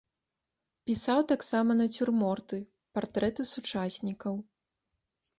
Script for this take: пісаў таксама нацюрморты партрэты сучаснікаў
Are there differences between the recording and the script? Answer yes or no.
no